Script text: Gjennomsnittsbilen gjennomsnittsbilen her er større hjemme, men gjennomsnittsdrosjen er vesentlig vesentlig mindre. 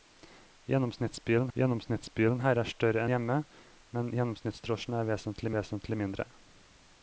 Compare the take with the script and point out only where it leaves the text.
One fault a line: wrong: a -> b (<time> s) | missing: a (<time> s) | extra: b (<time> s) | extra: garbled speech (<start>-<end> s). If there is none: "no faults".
no faults